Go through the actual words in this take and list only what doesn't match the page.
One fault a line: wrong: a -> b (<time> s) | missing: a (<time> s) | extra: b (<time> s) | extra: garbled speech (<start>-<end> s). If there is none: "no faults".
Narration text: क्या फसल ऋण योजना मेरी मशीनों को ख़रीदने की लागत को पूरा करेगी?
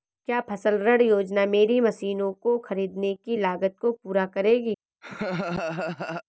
no faults